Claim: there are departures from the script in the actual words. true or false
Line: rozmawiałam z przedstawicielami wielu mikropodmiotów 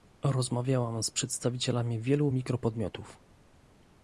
false